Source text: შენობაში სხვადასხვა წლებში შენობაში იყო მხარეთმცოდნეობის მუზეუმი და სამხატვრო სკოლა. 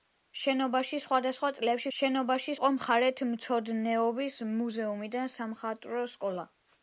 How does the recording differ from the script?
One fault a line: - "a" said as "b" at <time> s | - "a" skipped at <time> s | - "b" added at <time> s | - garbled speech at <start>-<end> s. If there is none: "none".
none